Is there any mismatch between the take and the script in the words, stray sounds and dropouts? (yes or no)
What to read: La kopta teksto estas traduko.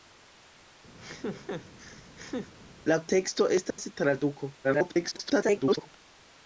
yes